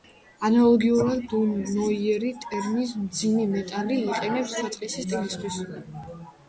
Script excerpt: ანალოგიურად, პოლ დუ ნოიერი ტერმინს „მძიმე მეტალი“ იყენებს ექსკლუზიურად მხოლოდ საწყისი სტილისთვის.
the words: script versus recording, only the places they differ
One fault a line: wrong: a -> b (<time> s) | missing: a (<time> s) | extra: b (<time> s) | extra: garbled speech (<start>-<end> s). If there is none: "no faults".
missing: პოლ (1.2 s)
missing: ექსკლუზიურად მხოლოდ (4.5 s)